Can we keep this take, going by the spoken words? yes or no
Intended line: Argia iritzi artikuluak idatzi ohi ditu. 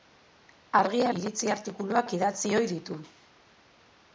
yes